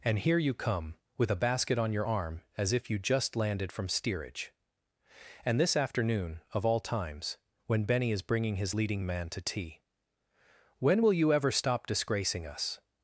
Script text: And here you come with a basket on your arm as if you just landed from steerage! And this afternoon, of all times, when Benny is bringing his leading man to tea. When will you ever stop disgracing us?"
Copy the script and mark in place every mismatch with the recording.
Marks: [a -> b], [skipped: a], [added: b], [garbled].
And here you come with a basket on your arm as if you just landed from steerage! And this afternoon, of all times, when Benny is bringing his leading man to tea. When will you ever stop disgracing us?"